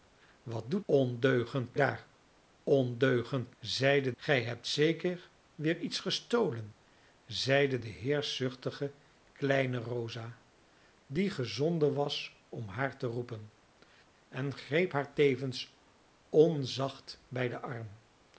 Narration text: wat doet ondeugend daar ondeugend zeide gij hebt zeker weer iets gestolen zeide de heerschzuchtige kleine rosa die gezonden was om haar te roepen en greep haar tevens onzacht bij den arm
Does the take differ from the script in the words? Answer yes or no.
no